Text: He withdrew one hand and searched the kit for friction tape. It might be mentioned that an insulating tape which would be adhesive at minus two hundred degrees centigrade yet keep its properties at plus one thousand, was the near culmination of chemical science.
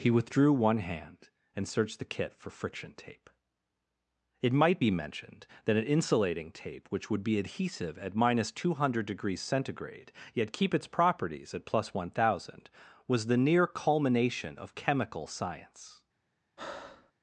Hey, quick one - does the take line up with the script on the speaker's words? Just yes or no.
yes